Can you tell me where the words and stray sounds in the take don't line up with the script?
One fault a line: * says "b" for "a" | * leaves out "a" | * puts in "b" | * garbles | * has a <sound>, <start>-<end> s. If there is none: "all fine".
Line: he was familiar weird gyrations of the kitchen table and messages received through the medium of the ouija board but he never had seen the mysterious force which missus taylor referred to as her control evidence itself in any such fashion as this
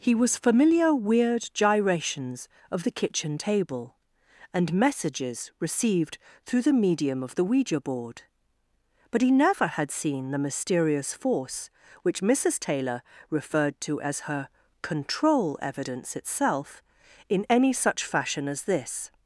all fine